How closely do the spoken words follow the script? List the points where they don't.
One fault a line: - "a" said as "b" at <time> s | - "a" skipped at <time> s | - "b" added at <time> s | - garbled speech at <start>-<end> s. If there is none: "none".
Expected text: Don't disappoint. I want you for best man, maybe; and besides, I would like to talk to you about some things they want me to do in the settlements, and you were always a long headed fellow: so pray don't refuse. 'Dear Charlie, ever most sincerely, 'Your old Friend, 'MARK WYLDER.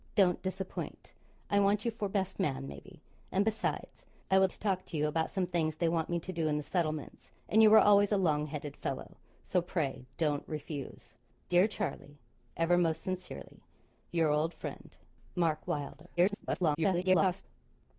- "like" skipped at 4.5 s
- garbled speech at 16.2-17.4 s